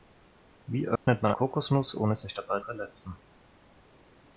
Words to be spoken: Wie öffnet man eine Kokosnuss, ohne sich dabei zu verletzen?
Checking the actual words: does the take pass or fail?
fail